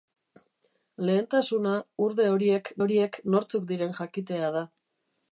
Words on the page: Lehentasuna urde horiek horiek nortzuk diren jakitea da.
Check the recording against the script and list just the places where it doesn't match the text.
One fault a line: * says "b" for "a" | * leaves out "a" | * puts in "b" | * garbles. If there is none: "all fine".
all fine